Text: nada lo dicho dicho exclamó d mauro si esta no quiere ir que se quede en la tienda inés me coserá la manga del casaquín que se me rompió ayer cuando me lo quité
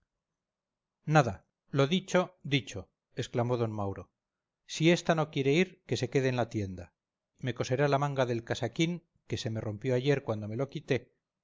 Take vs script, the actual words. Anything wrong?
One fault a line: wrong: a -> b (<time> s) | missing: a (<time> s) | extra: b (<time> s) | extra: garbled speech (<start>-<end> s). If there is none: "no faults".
missing: inés (6.8 s)